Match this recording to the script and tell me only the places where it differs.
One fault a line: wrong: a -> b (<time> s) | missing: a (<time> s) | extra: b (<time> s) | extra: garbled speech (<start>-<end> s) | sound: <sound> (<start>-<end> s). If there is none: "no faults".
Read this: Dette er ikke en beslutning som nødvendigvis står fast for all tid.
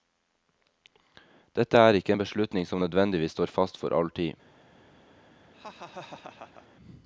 sound: laugh (5.5-6.7 s)